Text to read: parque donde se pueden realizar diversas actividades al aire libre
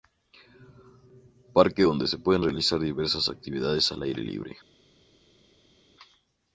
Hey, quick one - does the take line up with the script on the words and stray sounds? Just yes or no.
yes